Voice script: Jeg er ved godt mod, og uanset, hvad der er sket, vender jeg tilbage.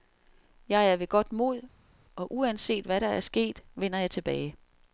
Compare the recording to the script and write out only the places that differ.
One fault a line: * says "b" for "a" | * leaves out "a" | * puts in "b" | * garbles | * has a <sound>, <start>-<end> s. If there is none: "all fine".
all fine